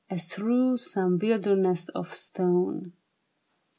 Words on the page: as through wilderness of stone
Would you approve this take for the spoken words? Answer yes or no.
no